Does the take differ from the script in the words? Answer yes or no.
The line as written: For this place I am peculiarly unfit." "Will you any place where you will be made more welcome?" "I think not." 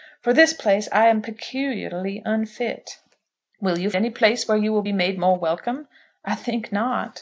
no